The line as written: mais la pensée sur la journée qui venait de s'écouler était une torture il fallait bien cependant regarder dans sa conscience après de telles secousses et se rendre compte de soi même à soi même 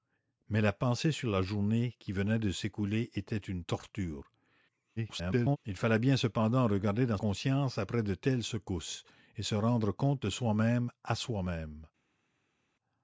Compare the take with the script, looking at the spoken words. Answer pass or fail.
fail